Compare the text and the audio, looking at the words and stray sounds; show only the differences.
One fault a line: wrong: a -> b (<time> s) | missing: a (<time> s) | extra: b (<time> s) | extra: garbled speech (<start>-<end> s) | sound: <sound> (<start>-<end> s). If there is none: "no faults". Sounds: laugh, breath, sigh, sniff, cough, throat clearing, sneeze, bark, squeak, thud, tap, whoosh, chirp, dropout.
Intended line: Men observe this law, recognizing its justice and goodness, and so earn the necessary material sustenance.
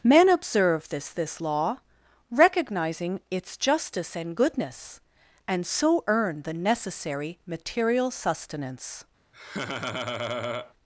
extra: this (1.1 s)
sound: laugh (9.3-10.7 s)